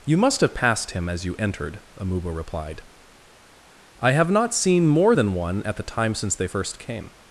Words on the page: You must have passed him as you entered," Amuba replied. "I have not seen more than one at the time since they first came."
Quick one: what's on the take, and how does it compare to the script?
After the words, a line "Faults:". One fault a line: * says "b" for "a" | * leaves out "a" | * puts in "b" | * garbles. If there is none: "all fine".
You must have passed him as you entered," Amuba replied. "I have not seen more than one at the time since they first came."
Faults:
all fine